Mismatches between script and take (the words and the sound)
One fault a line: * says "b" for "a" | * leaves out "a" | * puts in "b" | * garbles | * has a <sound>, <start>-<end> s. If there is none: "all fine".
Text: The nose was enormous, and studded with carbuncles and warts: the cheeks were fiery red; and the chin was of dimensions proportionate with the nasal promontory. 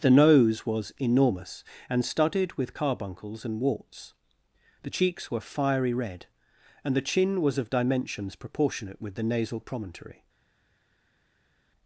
all fine